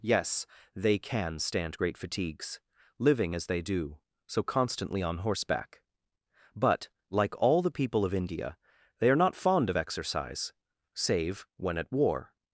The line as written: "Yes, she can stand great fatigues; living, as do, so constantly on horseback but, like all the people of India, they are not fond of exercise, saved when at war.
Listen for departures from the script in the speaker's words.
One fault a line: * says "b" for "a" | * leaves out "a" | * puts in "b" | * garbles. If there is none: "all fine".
* says "they" for "she"
* puts in "they"
* says "save" for "saved"